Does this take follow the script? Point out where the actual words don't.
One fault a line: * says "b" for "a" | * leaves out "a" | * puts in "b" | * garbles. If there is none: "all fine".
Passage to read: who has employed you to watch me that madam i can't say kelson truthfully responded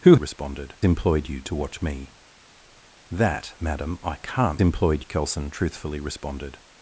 * says "responded" for "has"
* says "employed" for "say"